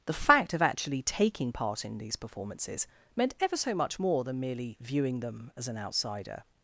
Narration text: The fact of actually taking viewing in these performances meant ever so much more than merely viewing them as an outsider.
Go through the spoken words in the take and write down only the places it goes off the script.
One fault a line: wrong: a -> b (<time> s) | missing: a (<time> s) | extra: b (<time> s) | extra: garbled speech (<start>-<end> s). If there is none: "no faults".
wrong: viewing -> part (1.5 s)